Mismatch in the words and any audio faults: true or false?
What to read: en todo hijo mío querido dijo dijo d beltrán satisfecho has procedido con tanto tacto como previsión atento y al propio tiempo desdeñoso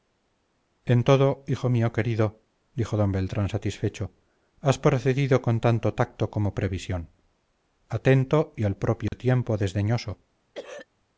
true